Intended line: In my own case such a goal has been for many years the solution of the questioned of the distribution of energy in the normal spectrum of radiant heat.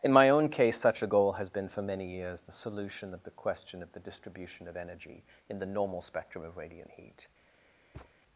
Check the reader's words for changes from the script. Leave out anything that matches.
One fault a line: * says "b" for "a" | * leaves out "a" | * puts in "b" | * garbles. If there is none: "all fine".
* says "question" for "questioned"